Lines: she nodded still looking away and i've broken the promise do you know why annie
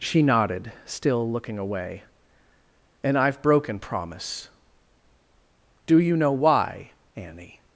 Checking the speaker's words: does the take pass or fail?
fail